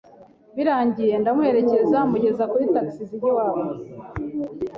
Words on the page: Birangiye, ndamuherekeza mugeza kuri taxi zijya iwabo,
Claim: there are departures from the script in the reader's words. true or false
false